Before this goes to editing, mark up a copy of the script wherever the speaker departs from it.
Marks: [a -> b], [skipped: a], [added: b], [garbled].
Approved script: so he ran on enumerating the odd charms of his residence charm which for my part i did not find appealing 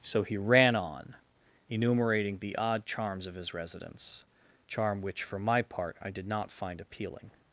so he ran on enumerating the odd charms of his residence charm which for my part i did not find appealing